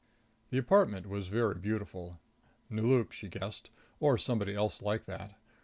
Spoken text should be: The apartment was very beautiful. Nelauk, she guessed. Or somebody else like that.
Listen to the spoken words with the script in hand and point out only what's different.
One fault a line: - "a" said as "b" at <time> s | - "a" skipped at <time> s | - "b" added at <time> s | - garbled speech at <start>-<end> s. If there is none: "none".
none